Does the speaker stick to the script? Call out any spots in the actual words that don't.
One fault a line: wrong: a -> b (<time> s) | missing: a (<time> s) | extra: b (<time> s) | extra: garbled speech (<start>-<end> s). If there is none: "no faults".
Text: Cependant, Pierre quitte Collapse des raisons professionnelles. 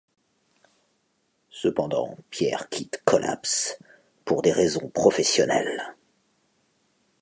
extra: pour (4.2 s)